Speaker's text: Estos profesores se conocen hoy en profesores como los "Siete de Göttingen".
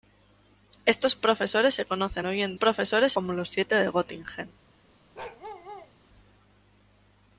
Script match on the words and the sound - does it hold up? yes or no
no